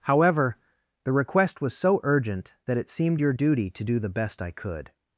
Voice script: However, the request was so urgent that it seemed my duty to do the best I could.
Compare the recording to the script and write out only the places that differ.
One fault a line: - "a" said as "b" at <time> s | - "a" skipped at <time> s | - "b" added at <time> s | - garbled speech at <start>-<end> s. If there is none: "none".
- "my" said as "your" at 3.2 s